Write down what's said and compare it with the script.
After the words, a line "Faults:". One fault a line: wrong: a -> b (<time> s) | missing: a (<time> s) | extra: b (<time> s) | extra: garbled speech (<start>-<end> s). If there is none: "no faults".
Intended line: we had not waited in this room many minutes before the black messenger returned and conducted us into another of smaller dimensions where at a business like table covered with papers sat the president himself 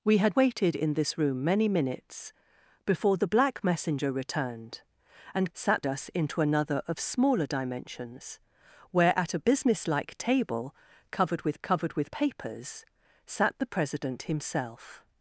we had waited in this room many minutes before the black messenger returned and sat us into another of smaller dimensions where at a business like table covered with covered with papers sat the president himself
Faults:
missing: not (0.3 s)
wrong: conducted -> sat (5.5 s)
extra: covered with (11.6 s)